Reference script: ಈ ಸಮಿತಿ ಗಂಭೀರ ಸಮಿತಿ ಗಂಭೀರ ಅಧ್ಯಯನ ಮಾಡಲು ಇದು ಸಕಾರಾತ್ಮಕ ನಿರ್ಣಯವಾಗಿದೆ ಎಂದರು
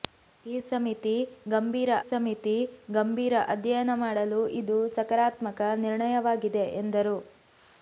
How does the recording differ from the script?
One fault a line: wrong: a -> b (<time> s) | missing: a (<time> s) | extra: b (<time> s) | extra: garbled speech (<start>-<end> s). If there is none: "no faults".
no faults